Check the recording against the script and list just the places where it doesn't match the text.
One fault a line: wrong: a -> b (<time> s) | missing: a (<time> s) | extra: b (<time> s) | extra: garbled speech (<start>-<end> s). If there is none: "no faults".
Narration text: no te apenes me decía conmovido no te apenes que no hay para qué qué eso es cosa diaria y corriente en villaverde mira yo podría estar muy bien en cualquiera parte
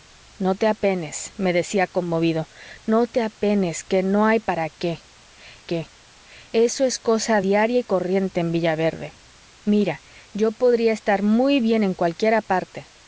no faults